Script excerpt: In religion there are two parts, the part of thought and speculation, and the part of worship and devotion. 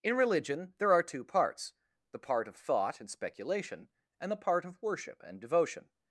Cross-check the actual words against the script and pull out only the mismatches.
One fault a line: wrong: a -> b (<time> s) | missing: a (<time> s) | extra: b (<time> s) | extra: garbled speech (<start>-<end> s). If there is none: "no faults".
no faults